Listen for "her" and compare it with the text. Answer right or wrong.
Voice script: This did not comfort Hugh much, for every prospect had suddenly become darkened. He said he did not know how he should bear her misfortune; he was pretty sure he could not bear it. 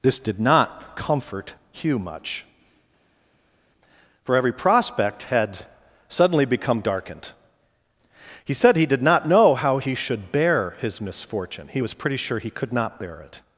wrong